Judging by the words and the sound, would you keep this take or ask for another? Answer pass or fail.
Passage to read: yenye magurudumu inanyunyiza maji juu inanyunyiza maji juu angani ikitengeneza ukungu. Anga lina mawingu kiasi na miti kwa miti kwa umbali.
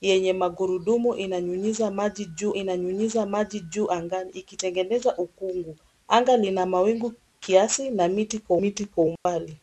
fail